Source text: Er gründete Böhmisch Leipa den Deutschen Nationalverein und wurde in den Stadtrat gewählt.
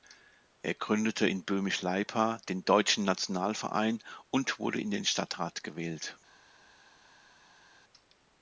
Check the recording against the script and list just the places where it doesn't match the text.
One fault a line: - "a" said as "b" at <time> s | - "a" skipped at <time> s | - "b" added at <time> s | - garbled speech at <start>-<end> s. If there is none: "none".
- "in" added at 1.2 s